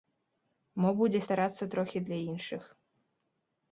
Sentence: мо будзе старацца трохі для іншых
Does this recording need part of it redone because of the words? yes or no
no